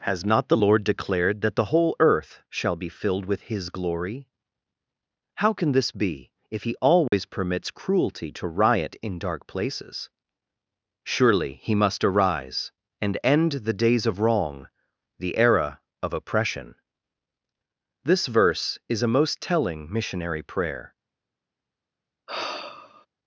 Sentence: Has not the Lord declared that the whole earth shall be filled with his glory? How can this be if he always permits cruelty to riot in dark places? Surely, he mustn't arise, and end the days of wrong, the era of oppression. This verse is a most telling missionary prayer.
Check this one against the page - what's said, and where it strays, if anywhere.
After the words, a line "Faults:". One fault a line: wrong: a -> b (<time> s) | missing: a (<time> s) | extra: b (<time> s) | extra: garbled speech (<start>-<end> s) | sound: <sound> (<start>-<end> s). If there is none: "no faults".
Has not the Lord declared that the whole earth shall be filled with his glory? How can this be if he always permits cruelty to riot in dark places? Surely, he must arise, and end the days of wrong, the era of oppression. This verse is a most telling missionary prayer.
Faults:
sound: dropout (7.1-7.1 s)
wrong: mustn't -> must (11.7 s)
sound: sigh (22.3-23.1 s)